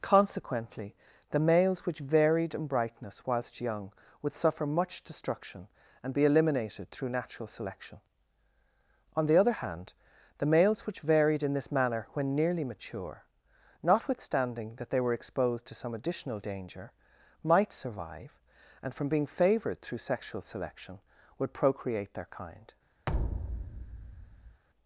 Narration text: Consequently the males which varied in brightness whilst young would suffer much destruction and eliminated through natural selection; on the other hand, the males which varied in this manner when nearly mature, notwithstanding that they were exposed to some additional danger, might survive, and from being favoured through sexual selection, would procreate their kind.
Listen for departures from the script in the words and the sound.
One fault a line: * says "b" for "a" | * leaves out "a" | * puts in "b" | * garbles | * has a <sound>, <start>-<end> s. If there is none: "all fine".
* puts in "be"
* has a thud, 23.1-24.6 s